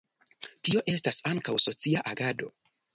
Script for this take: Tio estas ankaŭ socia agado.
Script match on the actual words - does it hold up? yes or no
yes